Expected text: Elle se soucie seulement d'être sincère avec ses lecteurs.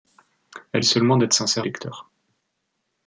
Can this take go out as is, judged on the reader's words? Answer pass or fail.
fail